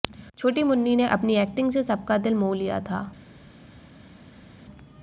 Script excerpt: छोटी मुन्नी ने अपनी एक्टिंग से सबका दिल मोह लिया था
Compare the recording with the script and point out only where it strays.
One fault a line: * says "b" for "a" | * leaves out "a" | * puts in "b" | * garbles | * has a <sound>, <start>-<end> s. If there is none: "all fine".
all fine